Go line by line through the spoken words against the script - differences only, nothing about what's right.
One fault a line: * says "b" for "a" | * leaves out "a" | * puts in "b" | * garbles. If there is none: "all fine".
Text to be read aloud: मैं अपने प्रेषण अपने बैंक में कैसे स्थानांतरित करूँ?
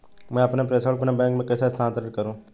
all fine